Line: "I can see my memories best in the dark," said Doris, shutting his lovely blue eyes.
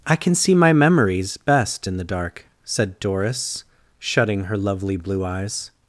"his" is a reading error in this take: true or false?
true